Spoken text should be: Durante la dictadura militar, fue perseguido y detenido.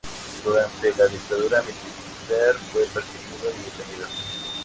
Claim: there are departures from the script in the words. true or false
false